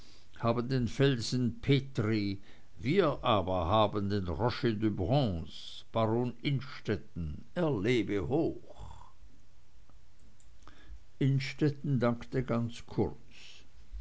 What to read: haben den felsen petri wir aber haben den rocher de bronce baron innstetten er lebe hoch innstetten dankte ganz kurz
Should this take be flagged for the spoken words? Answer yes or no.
no